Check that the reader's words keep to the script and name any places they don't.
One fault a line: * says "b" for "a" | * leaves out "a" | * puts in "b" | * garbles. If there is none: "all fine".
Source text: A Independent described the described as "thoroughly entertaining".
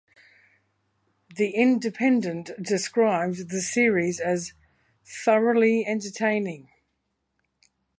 * says "The" for "A"
* says "series" for "described"